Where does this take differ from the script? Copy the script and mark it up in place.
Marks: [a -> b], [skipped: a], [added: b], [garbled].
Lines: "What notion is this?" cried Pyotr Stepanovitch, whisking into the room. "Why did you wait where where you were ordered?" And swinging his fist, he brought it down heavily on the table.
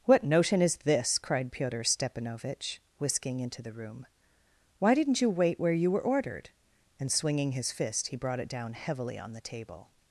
"What notion is this?" cried Pyotr Stepanovitch, whisking into the room. "Why [did -> didn't] you wait where [skipped: where] you were ordered?" And swinging his fist, he brought it down heavily on the table.